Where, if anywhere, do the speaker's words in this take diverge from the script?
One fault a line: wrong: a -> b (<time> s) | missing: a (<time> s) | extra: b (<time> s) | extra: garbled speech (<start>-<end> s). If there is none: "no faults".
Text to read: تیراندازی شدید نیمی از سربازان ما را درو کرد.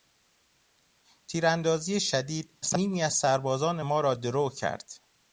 no faults